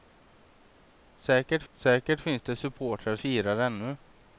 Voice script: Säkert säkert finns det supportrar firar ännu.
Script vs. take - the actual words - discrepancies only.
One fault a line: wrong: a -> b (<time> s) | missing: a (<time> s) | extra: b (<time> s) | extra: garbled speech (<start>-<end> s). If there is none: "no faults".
no faults